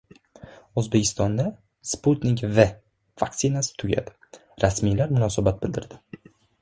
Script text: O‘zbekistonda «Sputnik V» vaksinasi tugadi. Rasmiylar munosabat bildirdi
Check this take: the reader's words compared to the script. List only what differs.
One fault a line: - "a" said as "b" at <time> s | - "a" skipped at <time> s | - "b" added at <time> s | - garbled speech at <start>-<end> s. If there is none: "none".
none